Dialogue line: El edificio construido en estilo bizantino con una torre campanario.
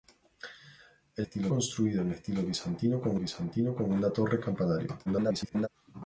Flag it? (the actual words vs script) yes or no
yes